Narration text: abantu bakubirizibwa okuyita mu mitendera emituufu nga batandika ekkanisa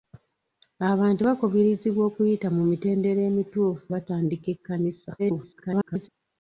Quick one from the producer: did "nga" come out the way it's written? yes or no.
no